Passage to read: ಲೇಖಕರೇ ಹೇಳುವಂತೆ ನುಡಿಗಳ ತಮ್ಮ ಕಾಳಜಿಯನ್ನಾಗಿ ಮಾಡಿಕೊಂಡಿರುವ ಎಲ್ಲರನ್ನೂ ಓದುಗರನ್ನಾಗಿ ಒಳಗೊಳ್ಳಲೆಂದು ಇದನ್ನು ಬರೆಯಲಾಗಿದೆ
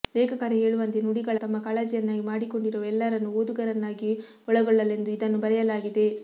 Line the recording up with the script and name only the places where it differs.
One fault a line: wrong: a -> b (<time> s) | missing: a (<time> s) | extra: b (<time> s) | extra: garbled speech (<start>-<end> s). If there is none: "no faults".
no faults